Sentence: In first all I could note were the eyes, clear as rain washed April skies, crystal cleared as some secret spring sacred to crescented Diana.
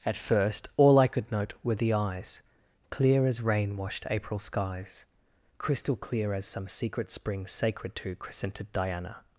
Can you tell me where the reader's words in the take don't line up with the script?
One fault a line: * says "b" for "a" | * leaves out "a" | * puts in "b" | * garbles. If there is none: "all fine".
* says "At" for "In"
* says "clear" for "cleared"